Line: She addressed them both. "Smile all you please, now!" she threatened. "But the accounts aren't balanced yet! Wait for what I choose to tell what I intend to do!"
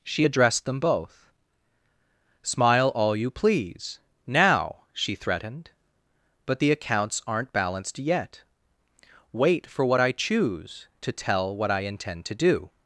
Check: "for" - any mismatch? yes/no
no